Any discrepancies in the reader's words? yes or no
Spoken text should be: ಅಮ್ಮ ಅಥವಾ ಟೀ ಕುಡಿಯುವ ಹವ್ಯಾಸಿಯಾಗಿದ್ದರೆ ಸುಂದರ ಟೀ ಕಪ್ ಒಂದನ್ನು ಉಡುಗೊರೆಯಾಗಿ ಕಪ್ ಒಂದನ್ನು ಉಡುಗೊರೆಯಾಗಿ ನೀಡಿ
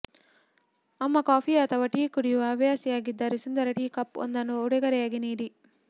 yes